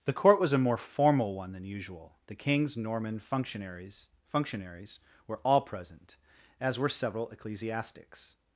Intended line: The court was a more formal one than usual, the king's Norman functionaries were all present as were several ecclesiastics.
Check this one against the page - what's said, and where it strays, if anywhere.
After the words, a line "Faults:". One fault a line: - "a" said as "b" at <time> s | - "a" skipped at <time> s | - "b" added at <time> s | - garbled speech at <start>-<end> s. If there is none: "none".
The court was a more formal one than usual, the king's Norman functionaries functionaries were all present as were several ecclesiastics.
Faults:
- "functionaries" added at 4.2 s